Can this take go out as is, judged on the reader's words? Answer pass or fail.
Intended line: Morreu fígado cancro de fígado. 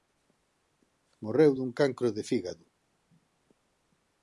fail